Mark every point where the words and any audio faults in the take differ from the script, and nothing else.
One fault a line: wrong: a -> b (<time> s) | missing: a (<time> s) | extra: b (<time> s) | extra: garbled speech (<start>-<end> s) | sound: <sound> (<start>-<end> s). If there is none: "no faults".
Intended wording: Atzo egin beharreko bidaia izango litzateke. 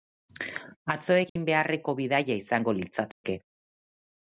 sound: dropout (1.3-1.4 s)
sound: dropout (3.1-3.2 s)